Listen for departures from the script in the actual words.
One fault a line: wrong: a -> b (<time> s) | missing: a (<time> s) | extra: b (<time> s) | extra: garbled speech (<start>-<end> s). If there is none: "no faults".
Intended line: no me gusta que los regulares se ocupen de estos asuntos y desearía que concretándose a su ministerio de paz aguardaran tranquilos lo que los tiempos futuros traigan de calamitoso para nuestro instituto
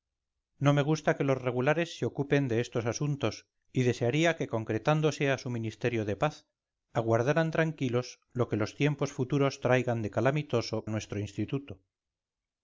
missing: para (10.9 s)